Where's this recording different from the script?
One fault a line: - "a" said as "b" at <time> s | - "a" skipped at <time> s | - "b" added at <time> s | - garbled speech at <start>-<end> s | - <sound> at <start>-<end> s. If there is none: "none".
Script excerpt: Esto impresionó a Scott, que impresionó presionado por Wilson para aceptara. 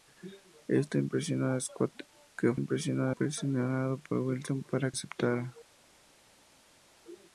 none